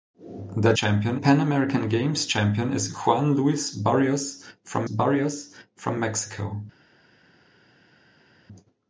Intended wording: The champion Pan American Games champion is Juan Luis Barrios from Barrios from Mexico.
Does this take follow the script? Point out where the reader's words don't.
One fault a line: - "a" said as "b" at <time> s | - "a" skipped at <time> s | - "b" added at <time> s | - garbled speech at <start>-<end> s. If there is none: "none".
none